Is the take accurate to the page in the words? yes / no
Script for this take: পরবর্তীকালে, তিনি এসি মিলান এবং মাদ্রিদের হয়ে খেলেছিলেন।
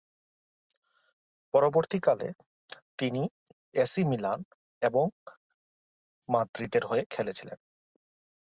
yes